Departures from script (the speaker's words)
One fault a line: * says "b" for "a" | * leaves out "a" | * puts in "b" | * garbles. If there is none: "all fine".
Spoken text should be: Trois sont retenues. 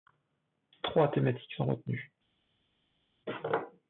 * puts in "thématiques"